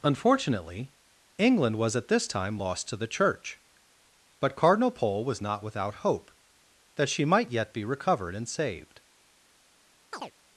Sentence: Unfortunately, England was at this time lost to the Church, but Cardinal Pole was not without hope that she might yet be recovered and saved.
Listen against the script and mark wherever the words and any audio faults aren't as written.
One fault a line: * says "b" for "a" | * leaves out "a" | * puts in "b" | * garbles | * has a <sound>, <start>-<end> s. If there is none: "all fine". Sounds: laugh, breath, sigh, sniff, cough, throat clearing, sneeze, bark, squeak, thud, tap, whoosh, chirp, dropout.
* has a chirp, 10.1-10.3 s